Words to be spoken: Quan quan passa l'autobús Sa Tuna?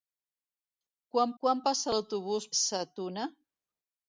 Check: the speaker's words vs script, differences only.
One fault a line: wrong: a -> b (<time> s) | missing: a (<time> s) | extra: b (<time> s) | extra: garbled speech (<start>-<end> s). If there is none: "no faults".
no faults